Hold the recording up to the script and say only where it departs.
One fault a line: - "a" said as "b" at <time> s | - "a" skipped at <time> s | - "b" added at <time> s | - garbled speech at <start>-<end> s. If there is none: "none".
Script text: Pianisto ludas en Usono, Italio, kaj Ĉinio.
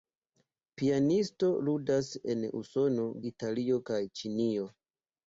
none